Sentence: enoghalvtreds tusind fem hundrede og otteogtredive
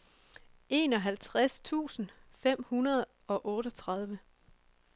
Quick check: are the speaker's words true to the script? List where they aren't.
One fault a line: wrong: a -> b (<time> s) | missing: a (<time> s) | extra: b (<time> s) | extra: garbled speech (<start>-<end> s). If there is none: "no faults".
no faults